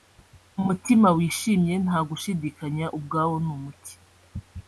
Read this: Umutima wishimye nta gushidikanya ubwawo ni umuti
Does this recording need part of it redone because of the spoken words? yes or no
no